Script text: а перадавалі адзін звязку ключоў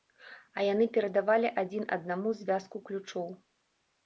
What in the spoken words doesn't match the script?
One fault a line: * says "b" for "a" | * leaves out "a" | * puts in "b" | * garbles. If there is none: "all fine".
* puts in "яны"
* puts in "аднаму"